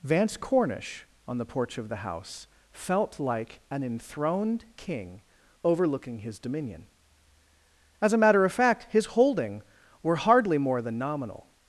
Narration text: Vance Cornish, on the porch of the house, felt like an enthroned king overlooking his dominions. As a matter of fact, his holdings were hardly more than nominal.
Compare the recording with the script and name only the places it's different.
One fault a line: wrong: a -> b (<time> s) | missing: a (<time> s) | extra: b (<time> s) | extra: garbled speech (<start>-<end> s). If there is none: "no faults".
wrong: dominions -> dominion (6.4 s)
wrong: holdings -> holding (9.1 s)